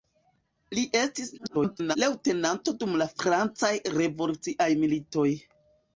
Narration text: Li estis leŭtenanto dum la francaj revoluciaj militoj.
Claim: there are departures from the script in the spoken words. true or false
true